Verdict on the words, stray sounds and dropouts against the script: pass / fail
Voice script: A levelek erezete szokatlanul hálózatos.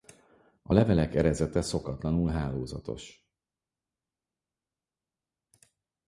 pass